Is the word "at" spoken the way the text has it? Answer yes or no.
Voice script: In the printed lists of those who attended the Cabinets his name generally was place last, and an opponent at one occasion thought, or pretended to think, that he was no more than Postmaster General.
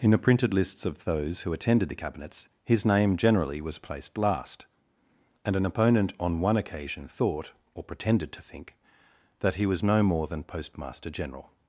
no